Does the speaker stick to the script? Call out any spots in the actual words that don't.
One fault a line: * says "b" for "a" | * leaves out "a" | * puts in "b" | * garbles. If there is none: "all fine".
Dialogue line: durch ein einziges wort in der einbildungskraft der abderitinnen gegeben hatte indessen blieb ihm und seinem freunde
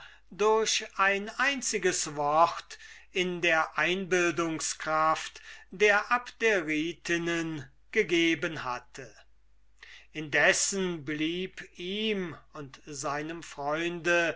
all fine